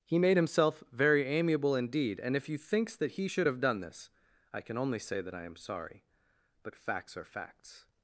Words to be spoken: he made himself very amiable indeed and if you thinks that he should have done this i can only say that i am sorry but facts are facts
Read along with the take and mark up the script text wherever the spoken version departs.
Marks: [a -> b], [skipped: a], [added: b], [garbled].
he made himself very amiable indeed and if you thinks that he should have done this i can only say that i am sorry but facts are facts